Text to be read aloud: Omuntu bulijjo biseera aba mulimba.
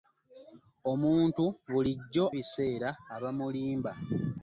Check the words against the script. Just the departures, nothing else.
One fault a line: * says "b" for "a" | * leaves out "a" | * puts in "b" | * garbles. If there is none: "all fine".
all fine